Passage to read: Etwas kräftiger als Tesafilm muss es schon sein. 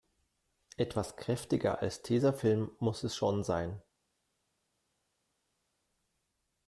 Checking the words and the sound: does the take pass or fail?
pass